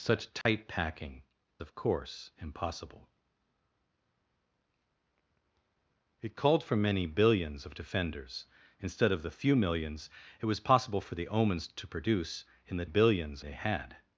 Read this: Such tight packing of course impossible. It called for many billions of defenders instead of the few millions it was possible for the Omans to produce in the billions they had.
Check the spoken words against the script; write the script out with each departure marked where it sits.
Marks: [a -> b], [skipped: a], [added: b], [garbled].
Such tight packing of course impossible. It called for many billions of defenders instead of the few millions it was possible for the Omans to produce in the billions they had.